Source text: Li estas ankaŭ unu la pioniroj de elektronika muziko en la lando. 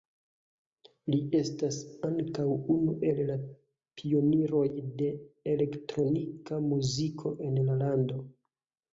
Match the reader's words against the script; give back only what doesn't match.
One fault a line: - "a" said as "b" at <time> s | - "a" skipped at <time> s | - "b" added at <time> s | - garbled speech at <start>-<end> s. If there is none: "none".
- "el" added at 3.1 s